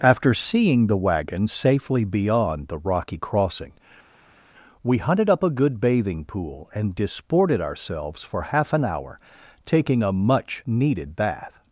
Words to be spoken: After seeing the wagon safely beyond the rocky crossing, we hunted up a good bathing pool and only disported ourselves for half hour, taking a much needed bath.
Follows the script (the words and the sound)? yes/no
no